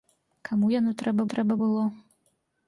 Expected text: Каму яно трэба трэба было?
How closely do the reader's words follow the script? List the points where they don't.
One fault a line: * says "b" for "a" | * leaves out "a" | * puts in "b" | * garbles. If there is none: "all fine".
all fine